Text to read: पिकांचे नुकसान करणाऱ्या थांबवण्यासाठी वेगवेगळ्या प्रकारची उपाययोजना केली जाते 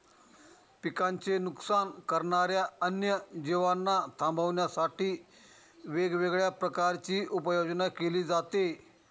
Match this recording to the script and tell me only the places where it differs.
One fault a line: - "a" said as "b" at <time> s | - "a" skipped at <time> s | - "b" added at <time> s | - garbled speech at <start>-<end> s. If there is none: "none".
- "अन्य जीवांना" added at 2.8 s